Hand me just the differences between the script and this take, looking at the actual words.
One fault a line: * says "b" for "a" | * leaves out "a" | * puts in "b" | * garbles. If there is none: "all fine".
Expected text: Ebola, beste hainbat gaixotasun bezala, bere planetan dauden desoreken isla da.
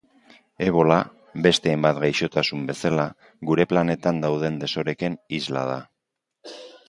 * says "gure" for "bere"